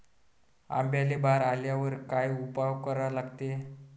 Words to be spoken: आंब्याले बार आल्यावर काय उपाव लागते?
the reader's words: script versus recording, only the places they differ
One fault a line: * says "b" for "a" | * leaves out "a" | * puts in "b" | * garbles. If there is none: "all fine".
* puts in "करा"